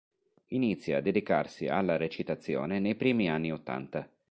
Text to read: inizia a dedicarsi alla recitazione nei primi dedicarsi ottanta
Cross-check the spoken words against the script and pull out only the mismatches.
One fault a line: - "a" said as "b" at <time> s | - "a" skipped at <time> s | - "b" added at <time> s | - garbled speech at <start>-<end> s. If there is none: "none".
- "dedicarsi" said as "anni" at 3.3 s